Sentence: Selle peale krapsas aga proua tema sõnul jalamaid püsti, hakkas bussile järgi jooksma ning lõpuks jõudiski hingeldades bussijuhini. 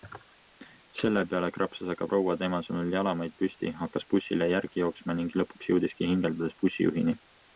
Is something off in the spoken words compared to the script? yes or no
no